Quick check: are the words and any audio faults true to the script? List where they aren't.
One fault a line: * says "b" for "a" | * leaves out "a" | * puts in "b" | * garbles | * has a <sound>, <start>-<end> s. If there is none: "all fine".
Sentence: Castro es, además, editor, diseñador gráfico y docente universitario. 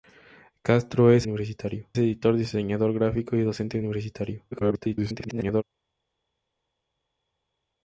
* says "universitario" for "además"
* garbles